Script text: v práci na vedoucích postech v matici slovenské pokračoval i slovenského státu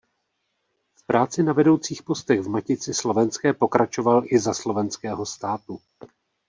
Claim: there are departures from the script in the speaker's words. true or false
true